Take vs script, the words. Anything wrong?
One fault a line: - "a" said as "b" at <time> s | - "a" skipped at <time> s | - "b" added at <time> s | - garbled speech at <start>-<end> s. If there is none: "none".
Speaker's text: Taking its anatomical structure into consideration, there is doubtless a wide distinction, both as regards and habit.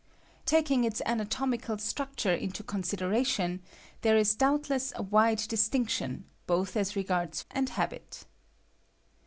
none